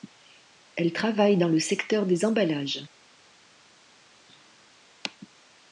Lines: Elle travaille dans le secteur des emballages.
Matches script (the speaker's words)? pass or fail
pass